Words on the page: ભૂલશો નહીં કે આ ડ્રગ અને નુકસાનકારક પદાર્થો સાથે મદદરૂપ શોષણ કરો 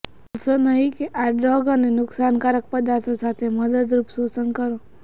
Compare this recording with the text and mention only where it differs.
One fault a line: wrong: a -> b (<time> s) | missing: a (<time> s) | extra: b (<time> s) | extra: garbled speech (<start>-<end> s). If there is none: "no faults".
no faults